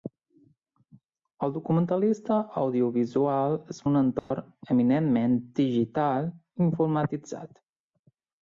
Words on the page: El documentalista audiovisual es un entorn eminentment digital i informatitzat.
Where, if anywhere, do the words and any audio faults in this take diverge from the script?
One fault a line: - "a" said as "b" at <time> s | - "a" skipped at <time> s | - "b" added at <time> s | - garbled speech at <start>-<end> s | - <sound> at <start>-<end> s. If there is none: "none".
- dropout at 4.2-4.3 s